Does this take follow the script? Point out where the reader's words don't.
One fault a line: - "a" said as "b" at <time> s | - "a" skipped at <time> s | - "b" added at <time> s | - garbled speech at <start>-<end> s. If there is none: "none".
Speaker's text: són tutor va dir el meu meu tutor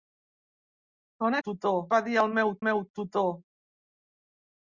none